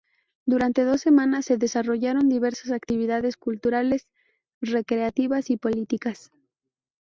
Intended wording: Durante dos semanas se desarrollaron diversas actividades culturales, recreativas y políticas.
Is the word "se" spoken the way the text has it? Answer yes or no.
yes